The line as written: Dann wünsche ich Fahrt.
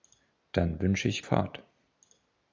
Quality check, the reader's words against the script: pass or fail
pass